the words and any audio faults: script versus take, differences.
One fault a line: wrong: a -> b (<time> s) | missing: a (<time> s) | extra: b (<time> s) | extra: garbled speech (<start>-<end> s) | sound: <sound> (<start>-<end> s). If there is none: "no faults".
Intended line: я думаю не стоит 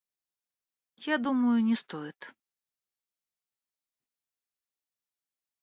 no faults